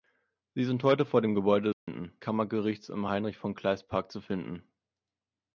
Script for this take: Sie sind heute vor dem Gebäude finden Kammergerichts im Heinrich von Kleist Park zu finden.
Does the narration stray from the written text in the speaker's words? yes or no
no